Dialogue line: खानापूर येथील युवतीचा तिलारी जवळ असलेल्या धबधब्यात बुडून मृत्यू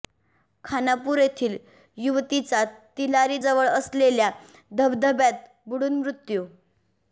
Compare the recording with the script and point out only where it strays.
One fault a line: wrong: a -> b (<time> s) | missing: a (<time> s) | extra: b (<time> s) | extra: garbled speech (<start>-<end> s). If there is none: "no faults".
no faults